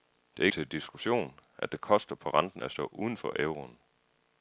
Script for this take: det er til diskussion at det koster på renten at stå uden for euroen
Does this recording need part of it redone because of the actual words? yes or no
no